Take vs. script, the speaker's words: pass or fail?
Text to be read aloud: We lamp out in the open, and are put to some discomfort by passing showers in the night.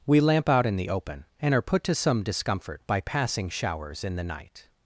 pass